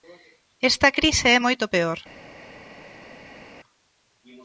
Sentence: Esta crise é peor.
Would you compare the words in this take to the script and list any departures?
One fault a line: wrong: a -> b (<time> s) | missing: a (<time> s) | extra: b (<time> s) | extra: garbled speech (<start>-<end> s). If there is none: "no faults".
extra: moito (1.4 s)